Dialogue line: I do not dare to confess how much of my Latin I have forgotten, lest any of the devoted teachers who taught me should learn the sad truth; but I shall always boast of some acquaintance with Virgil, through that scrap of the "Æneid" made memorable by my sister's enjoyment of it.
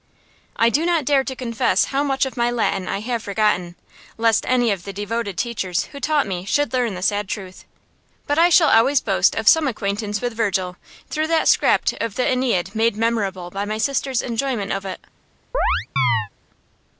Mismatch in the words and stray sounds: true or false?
true